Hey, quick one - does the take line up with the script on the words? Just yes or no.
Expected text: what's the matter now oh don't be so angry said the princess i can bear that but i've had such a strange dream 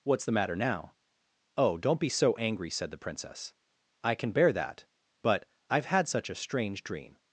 yes